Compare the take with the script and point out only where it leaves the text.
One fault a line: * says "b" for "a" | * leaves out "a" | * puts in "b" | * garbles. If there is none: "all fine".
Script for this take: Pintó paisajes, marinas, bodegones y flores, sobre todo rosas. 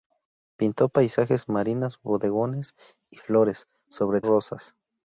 * leaves out "todo"